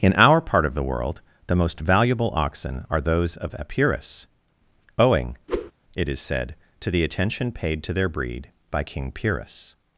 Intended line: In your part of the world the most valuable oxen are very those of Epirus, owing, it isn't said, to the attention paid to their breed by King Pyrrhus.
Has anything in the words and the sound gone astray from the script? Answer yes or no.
yes